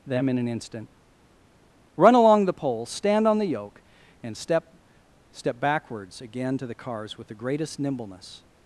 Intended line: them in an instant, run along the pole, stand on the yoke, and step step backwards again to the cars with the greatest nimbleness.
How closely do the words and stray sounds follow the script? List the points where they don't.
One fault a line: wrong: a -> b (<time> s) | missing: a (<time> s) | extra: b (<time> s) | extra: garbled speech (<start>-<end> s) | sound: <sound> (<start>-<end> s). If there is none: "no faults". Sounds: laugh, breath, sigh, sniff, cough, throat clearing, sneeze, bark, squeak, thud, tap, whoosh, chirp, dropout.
no faults